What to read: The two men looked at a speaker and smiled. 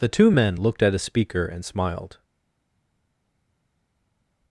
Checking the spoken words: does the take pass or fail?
pass